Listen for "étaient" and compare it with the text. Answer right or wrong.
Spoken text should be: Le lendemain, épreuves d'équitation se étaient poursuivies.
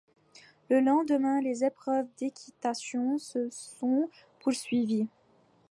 wrong